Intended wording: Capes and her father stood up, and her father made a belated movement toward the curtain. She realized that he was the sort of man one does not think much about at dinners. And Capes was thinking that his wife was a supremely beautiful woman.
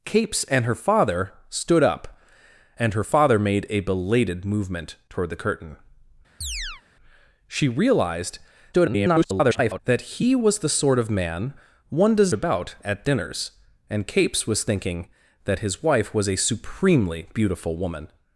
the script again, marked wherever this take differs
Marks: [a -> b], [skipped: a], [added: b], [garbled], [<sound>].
Capes and her father stood up, and her father made a belated movement toward the curtain. [chirp] She realized [garbled] that he was the sort of man one does [skipped: not think much] about at dinners. And Capes was thinking that his wife was a supremely beautiful woman.